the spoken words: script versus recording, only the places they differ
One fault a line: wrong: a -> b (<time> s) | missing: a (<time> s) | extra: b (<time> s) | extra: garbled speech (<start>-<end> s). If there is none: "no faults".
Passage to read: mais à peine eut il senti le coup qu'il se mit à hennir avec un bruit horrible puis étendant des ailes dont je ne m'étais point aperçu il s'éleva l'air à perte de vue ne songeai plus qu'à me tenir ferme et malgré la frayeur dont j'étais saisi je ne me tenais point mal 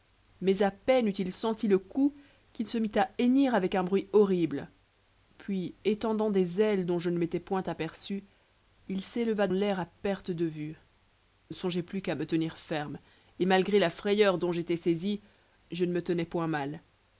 no faults